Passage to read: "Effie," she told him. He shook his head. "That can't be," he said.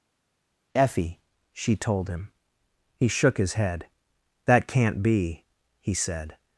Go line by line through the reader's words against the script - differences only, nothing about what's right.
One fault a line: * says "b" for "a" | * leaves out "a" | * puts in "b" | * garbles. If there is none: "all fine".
all fine